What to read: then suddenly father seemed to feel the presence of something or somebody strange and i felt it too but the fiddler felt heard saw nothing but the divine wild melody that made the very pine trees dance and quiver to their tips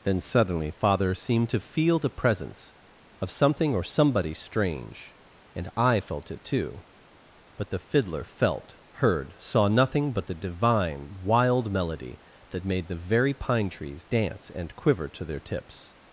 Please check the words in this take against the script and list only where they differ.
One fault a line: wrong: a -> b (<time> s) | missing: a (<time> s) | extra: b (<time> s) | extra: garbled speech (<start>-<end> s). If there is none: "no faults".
no faults